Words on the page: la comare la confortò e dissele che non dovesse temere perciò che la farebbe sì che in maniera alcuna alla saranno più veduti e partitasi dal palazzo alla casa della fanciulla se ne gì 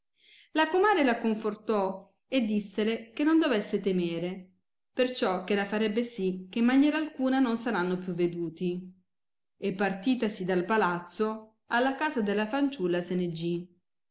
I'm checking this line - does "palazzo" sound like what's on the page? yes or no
yes